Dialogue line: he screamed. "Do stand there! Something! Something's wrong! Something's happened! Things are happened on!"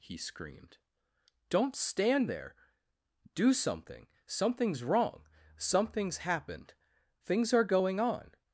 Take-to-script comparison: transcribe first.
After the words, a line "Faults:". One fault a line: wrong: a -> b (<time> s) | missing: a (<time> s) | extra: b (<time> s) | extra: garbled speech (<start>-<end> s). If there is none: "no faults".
he screamed. "Don't stand there! Do something! Something's wrong! Something's happened! Things are going on!"
Faults:
wrong: Do -> Don't (1.5 s)
extra: Do (3.4 s)
wrong: happened -> going (7.8 s)